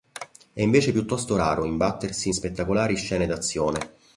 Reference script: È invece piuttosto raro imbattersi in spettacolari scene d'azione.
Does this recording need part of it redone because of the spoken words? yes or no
no